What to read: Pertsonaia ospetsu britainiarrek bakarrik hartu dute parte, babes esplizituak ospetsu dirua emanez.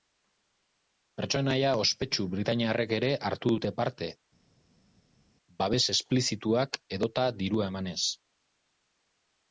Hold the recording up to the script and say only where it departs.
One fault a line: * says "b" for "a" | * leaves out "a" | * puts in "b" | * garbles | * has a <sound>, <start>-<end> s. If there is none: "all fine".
* says "ere" for "bakarrik"
* says "edota" for "ospetsu"